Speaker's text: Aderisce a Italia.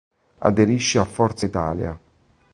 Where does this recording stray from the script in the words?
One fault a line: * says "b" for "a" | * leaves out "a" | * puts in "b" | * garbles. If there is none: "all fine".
* puts in "Forza"